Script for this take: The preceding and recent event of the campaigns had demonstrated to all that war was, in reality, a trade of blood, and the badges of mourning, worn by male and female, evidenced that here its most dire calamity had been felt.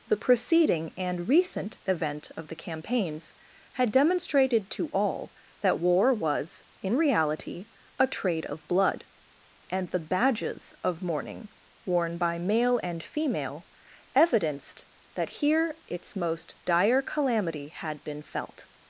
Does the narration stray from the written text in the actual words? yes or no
no